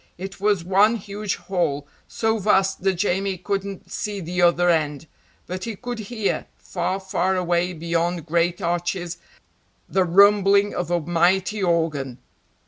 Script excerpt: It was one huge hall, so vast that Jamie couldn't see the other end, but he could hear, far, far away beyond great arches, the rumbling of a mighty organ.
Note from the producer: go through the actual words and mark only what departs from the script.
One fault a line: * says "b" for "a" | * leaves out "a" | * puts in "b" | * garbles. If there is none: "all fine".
all fine